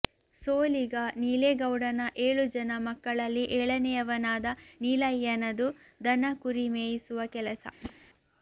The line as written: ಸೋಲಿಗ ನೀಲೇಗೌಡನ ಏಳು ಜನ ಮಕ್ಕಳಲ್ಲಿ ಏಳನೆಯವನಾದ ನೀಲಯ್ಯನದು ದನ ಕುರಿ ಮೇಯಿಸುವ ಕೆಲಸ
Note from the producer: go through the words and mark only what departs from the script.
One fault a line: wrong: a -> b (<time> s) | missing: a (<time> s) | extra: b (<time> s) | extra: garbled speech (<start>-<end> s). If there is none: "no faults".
no faults